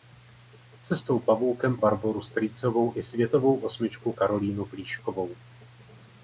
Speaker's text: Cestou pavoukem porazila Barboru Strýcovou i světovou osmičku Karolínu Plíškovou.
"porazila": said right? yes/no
no